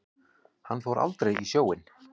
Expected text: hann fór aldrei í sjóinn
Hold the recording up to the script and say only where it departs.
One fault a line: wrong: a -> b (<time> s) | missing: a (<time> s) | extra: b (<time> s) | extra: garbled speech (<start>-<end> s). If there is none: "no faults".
no faults